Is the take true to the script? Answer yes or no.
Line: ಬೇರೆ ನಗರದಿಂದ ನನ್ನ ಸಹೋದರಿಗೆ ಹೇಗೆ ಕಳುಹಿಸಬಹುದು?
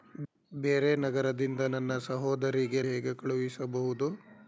yes